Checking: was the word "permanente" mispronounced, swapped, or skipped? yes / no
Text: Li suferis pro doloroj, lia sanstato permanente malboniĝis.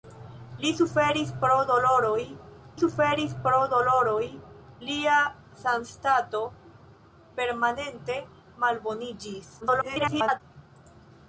no